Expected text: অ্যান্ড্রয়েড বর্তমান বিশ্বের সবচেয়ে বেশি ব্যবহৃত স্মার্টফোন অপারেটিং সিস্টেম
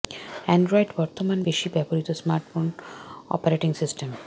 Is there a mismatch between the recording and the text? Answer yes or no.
yes